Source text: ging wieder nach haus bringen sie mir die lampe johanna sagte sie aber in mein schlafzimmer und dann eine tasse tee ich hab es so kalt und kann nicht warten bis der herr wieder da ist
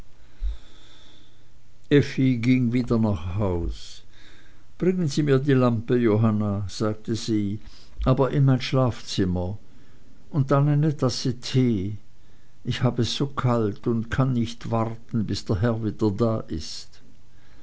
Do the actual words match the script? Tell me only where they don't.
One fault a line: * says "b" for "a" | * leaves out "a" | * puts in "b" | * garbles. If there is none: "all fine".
all fine